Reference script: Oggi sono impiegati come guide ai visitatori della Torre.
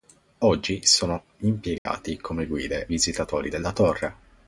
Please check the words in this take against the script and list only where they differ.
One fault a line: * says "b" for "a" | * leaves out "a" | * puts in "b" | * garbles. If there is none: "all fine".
* leaves out "ai"